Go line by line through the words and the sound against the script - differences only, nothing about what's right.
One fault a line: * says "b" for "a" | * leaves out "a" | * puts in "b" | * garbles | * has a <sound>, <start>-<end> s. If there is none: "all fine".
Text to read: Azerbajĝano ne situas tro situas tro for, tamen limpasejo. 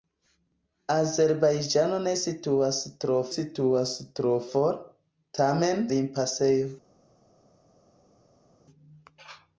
all fine